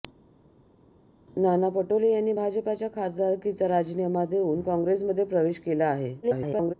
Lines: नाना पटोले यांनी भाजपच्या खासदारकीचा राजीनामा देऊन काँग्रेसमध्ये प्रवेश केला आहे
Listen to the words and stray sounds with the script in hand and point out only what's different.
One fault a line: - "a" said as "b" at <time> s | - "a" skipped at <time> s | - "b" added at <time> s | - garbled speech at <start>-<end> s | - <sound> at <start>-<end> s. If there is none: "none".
- garbled speech at 6.2-6.7 s